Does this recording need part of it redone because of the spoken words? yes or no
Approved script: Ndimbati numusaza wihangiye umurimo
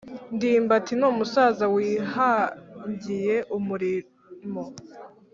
no